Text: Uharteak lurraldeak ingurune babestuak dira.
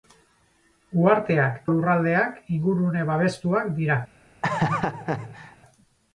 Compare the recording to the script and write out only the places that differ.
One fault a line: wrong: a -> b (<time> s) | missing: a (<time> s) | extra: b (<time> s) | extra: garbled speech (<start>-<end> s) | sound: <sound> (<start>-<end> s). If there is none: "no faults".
sound: laugh (4.4-5.6 s)